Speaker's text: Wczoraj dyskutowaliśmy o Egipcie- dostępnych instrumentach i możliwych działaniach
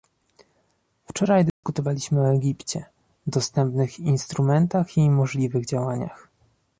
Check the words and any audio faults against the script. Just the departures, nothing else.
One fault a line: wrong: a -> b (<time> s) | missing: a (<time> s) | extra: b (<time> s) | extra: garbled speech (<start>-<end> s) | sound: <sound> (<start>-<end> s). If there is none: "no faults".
sound: dropout (1.5-1.6 s)